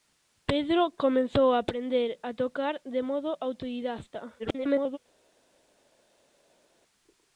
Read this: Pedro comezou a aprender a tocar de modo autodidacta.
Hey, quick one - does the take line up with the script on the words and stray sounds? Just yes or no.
no